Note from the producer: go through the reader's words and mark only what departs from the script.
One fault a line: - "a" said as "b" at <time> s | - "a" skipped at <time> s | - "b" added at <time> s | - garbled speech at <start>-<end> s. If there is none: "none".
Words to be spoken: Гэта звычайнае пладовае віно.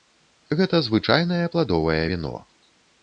none